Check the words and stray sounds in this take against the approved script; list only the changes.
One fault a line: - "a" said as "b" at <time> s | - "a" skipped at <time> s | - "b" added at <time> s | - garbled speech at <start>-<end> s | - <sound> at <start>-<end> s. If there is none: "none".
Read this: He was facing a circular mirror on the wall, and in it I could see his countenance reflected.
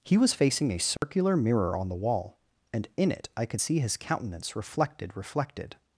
- dropout at 1.0-1.0 s
- "reflected" added at 5.2 s